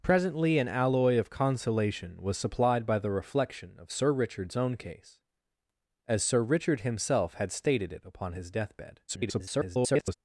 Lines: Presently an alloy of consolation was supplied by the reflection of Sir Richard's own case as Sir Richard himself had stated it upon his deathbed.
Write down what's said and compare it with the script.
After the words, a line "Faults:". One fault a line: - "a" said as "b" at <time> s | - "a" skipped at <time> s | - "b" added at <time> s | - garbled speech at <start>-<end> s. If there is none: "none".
Presently an alloy of consolation was supplied by the reflection of Sir Richard's own case as Sir Richard himself had stated it upon his deathbed. [garbled]
Faults:
- garbled speech at 9.1-10.1 s